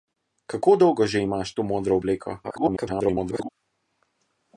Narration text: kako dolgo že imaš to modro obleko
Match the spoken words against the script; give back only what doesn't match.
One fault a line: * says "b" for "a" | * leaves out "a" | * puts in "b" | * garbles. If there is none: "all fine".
* garbles